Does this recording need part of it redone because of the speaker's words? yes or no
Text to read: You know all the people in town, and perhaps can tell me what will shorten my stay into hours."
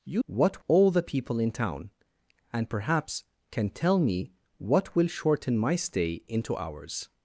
yes